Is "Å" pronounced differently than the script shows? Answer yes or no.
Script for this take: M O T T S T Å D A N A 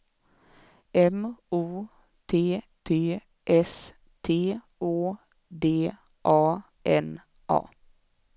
no